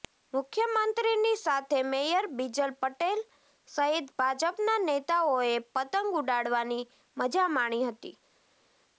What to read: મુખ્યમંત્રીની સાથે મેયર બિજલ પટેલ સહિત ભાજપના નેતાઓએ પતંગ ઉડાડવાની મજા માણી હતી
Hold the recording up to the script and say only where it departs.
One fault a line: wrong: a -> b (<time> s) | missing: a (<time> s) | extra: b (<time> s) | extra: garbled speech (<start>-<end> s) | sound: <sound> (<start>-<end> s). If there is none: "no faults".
no faults